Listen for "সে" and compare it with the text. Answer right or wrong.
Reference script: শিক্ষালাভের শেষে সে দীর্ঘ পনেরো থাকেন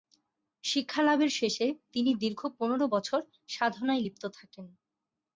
wrong